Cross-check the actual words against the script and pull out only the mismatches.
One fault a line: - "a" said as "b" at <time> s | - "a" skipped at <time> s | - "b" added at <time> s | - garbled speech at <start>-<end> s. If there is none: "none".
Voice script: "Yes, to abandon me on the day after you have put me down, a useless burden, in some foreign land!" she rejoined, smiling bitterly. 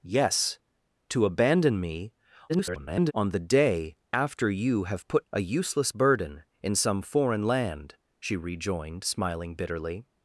- garbled speech at 2.5-3.1 s
- "me down" skipped at 5.3 s